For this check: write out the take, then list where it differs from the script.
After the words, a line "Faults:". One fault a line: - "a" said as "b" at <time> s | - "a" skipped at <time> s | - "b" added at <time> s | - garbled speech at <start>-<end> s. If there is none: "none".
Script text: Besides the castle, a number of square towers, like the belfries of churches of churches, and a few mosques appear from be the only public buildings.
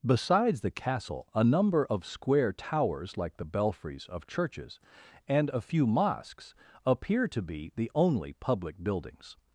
Besides the castle, a number of square towers, like the belfries of churches, and a few mosques appear to be the only public buildings.
Faults:
- "of churches" skipped at 4.8 s
- "from" said as "to" at 7.3 s